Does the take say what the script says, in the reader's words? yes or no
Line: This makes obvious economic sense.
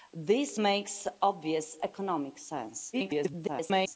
no